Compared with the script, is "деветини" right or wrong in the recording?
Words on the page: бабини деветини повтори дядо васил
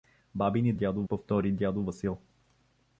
wrong